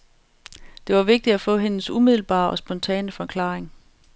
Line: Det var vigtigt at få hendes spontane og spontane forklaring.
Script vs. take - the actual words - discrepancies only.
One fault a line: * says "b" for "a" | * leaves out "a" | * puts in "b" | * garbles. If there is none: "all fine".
* says "umiddelbare" for "spontane"